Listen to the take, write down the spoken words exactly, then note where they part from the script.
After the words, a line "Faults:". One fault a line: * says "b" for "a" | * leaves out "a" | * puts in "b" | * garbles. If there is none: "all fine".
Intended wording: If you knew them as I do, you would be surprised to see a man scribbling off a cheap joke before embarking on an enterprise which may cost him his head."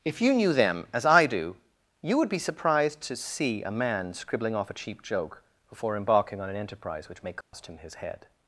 If you knew them as I do, you would be surprised to see a man scribbling off a cheap joke before embarking on an enterprise which may cost him his head."
Faults:
all fine